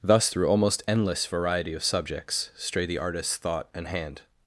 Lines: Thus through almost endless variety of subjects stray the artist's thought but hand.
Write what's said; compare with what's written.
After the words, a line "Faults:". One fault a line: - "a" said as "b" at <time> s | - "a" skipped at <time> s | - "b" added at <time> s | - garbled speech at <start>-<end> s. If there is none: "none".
Thus through almost endless variety of subjects stray the artist's thought and hand.
Faults:
- "but" said as "and" at 3.7 s